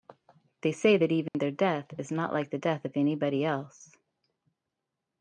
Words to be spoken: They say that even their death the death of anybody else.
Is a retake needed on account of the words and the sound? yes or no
yes